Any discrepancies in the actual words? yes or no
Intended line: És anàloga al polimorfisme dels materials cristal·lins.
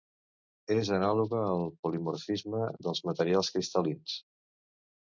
no